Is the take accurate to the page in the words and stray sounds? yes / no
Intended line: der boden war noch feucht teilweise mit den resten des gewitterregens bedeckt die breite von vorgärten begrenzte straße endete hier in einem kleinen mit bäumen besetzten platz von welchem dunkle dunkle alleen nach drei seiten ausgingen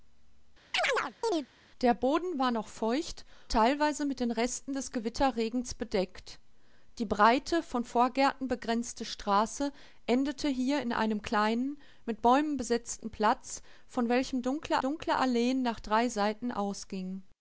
no